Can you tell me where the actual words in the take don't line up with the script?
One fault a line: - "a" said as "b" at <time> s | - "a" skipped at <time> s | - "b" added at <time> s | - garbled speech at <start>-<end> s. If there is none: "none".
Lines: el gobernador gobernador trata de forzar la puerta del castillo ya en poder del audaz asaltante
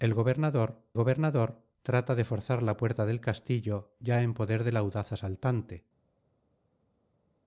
none